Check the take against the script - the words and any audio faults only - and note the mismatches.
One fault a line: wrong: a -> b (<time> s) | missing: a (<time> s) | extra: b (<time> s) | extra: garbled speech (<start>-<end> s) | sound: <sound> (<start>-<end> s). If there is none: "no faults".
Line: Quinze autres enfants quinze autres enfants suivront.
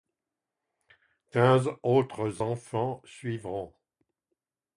missing: quinze autres enfants (3.0 s)